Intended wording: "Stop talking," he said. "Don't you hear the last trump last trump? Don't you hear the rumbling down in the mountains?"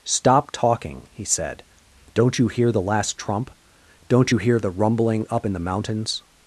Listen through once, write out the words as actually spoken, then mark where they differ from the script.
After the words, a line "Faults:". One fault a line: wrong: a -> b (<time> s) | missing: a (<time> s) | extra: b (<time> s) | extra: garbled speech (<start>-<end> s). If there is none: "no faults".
"Stop talking," he said. "Don't you hear the last trump? Don't you hear the rumbling up in the mountains?"
Faults:
missing: last trump (3.5 s)
wrong: down -> up (5.3 s)